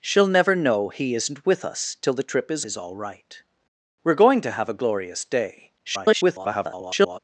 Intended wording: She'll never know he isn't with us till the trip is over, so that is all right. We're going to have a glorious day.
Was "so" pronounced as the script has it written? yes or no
no